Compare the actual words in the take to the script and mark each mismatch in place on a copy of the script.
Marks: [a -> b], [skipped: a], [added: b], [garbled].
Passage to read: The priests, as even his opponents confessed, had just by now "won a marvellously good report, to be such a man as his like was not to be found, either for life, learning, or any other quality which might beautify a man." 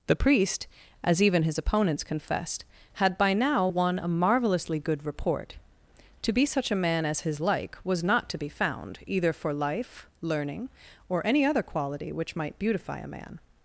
The [priests, -> priest] as even his opponents confessed, had [skipped: just] by now "won a marvellously good report, to be such a man as his like was not to be found, either for life, learning, or any other quality which might beautify a man."